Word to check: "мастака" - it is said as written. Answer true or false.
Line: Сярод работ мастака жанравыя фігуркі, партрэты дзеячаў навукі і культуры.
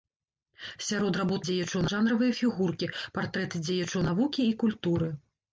false